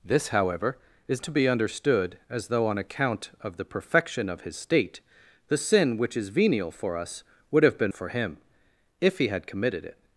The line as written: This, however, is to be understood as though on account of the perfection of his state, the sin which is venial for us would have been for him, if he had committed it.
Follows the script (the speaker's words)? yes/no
yes